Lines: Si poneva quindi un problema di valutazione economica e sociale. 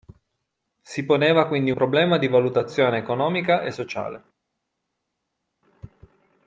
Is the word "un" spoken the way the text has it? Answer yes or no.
no